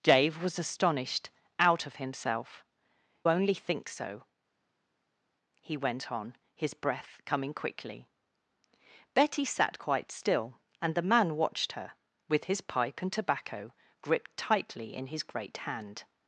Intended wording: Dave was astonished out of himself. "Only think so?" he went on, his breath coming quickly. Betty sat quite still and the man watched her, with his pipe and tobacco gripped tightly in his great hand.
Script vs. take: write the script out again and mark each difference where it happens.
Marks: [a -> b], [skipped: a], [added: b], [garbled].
Dave was astonished out of himself. "Only think so?" he went on, his breath coming quickly. Betty sat quite still and the man watched her, with his pipe and tobacco gripped tightly in his great hand.